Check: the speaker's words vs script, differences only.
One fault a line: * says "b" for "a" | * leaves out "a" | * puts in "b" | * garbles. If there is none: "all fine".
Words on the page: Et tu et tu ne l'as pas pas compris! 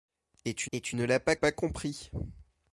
all fine